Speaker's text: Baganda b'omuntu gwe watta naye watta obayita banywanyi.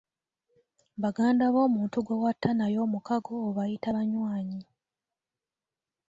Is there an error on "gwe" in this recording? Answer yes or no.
no